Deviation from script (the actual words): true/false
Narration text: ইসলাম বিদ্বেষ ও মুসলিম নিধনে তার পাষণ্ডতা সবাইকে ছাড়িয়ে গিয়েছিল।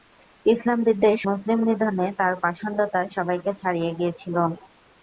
true